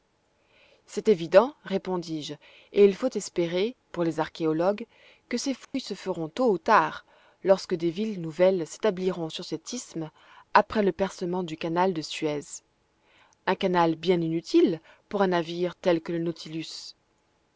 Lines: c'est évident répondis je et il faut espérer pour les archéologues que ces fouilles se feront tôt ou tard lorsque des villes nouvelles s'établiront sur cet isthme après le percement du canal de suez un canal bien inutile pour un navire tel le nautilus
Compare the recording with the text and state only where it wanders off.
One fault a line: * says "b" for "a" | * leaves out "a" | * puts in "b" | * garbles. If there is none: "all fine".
* puts in "que"